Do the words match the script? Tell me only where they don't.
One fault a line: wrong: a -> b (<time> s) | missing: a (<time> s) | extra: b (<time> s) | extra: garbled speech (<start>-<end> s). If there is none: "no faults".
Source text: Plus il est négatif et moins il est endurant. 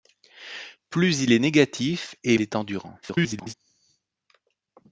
missing: moins il (2.4 s)
extra: garbled speech (3.0-3.5 s)